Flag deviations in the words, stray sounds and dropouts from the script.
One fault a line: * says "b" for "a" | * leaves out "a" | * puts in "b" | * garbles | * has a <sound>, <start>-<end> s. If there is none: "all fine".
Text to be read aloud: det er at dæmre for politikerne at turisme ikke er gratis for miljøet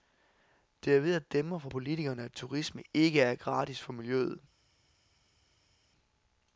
* puts in "ved"